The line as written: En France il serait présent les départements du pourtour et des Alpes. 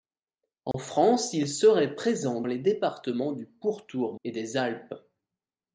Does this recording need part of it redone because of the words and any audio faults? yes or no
yes